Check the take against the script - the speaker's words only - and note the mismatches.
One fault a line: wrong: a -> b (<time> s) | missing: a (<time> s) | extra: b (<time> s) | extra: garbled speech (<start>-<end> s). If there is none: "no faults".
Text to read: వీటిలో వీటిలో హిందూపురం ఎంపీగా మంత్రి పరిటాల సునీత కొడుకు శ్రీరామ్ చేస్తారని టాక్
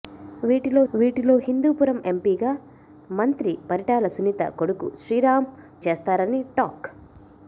no faults